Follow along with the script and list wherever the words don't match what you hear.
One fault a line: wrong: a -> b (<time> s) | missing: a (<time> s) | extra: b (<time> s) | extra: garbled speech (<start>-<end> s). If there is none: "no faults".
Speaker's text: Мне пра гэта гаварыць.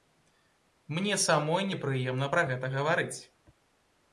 extra: самой непрыемна (1.2 s)